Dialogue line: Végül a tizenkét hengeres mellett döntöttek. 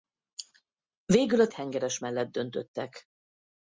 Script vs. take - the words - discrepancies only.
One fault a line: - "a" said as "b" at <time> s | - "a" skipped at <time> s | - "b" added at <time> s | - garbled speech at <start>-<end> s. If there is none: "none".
- "tizenkét" skipped at 1.5 s